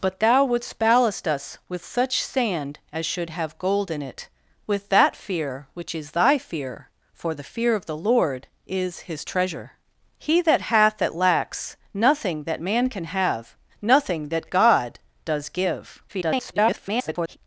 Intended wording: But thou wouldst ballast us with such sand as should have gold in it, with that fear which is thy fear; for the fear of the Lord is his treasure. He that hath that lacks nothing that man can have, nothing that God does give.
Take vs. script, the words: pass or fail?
fail